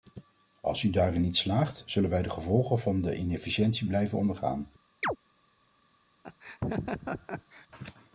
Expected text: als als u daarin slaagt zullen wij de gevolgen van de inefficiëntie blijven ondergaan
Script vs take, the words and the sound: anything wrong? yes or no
yes